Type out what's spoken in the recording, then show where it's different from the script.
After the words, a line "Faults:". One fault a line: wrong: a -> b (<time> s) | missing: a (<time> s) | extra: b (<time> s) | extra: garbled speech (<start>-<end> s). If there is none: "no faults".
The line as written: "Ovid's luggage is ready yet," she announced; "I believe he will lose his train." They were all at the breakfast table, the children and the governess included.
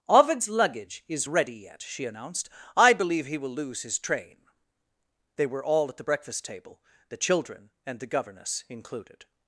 "Ovid's luggage is ready yet," she announced; "I believe he will lose his train." They were all at the breakfast table, the children and the governess included.
Faults:
no faults